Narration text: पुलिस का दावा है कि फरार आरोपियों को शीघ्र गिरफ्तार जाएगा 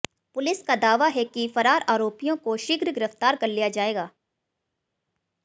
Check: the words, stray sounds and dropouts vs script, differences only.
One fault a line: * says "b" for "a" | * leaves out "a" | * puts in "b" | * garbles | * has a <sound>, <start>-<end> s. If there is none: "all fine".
* puts in "कर लिया"